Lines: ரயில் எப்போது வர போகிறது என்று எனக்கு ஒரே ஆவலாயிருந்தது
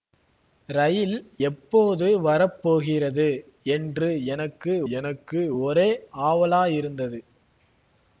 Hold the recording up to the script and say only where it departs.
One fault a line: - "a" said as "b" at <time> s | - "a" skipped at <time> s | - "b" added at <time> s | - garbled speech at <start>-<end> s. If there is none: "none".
- "எனக்கு" added at 4.9 s